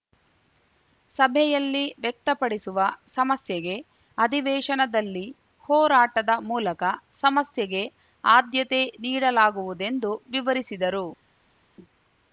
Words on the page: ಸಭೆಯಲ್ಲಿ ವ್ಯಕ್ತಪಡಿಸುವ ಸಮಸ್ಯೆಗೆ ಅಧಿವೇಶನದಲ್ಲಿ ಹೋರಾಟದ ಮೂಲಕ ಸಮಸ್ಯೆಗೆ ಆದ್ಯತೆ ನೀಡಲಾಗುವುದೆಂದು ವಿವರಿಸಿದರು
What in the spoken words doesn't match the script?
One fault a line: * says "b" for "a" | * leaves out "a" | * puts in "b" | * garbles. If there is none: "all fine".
all fine